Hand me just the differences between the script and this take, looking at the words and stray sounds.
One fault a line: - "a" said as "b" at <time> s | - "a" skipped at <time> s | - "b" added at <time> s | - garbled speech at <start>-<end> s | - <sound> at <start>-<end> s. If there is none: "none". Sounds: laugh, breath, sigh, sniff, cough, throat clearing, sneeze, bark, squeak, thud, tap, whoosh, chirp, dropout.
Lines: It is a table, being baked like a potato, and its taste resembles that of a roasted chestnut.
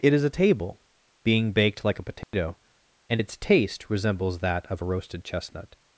- dropout at 2.2-2.3 s